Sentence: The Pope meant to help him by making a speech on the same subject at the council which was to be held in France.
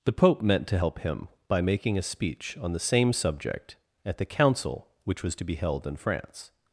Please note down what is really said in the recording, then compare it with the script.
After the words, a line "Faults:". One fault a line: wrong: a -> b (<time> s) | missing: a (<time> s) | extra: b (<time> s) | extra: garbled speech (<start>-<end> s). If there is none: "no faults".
The Pope meant to help him by making a speech on the same subject at the council which was to be held in France.
Faults:
no faults